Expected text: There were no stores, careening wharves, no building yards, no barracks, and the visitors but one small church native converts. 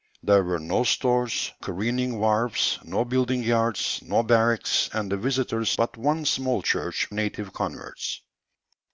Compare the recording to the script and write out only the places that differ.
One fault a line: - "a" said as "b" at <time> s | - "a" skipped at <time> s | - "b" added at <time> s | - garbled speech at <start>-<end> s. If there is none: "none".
none